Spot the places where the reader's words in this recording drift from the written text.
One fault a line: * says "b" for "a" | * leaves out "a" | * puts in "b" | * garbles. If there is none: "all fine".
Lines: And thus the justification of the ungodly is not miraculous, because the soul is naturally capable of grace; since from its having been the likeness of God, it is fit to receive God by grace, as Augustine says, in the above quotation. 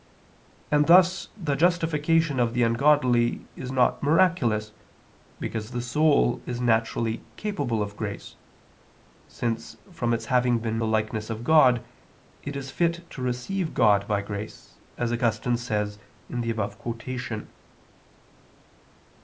all fine